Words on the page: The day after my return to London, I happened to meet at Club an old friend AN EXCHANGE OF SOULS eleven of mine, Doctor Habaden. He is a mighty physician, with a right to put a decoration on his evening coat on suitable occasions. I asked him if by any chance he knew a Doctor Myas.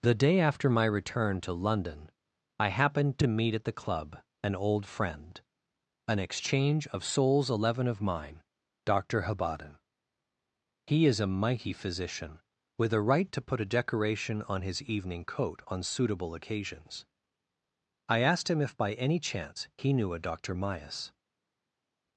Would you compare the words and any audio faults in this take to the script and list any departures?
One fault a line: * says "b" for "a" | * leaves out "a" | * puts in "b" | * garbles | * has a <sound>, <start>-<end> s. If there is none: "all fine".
* puts in "the"